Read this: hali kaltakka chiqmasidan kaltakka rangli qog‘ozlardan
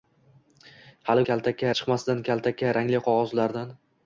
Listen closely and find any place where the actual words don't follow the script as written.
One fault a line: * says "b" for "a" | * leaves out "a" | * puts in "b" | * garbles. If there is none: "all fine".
all fine